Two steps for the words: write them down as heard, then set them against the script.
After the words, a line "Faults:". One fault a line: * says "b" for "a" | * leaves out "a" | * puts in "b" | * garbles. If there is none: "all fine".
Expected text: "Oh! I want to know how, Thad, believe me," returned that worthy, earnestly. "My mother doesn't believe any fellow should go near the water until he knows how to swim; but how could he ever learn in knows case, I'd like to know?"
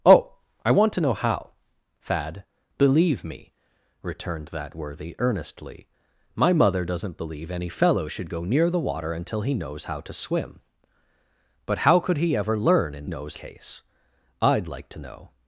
"Oh! I want to know how, Thad, believe me," returned that worthy, earnestly. "My mother doesn't believe any fellow should go near the water until he knows how to swim; but how could he ever learn in knows case, I'd like to know?"
Faults:
all fine